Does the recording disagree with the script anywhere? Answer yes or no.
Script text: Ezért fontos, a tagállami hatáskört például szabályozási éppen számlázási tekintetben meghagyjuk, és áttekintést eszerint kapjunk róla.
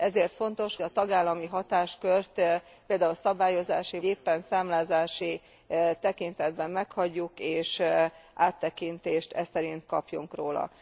no